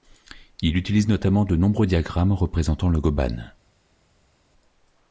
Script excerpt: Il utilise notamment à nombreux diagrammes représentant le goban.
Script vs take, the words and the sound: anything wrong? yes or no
yes